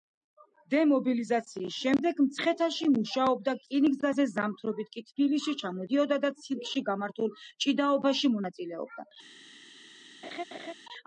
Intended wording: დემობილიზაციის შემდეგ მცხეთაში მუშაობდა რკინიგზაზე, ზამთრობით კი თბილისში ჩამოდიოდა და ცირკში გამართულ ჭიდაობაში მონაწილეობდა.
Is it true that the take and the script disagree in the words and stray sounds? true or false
true